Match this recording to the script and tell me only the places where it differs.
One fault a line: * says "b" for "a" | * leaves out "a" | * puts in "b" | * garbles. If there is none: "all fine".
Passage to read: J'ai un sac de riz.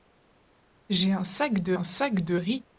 * puts in "un sac de"